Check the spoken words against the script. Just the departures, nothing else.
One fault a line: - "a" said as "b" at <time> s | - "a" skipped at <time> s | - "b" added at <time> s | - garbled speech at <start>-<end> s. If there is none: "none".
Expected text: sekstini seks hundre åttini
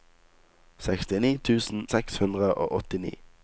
- "tusen" added at 1.5 s
- "og" added at 2.5 s